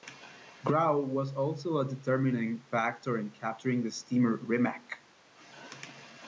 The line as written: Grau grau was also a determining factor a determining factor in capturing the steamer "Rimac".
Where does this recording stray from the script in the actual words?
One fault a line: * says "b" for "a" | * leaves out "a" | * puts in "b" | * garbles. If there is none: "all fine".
* leaves out "grau"
* leaves out "a determining factor"